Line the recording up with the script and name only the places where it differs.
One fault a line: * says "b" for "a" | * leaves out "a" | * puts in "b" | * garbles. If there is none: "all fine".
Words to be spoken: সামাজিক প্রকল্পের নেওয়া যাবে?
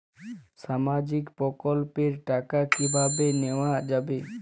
* puts in "টাকা কিভাবে"